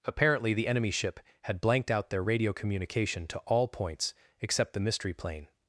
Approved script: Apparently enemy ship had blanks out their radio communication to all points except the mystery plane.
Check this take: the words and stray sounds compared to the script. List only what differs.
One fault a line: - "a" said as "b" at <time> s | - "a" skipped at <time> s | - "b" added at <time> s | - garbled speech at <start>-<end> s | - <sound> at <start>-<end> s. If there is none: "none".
- "the" added at 0.5 s
- "blanks" said as "blanked" at 1.6 s